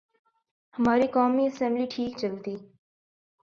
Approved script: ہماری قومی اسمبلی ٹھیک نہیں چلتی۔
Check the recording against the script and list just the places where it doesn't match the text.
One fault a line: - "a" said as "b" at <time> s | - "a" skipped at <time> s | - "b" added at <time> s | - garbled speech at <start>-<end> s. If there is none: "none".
- "نہیں" skipped at 2.2 s